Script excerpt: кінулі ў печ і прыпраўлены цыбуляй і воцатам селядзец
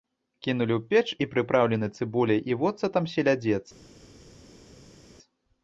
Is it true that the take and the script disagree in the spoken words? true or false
false